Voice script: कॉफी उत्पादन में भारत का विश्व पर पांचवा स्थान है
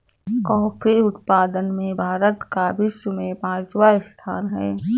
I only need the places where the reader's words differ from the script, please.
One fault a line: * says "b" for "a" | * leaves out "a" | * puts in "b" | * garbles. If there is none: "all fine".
* says "में" for "पर"